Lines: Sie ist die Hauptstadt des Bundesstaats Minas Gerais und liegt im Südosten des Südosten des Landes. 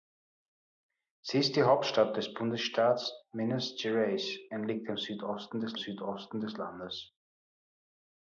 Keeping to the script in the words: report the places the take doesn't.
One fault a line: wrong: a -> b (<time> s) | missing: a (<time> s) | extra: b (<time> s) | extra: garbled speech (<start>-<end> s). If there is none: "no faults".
no faults